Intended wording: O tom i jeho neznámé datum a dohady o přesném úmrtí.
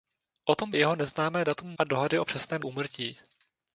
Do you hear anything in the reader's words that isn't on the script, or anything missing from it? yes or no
no